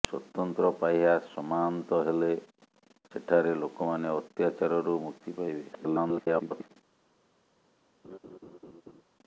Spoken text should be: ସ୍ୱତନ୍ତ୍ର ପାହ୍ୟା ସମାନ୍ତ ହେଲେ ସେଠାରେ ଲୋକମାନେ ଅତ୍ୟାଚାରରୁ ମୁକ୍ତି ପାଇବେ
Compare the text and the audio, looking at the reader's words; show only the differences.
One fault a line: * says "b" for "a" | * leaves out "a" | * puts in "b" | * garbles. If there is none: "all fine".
* garbles